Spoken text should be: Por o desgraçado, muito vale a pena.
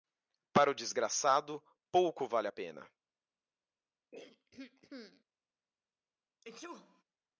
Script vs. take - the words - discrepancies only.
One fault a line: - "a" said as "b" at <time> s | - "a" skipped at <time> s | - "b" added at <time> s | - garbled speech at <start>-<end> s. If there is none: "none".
- "Por" said as "Para" at 0.5 s
- "muito" said as "pouco" at 1.9 s